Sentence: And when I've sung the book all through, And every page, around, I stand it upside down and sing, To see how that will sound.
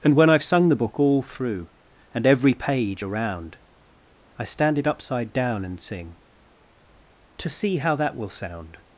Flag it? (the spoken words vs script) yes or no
no